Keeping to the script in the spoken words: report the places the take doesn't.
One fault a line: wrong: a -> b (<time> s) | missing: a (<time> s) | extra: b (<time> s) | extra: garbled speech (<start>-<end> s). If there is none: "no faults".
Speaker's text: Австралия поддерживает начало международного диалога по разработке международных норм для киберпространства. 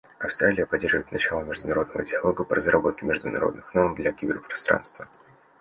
no faults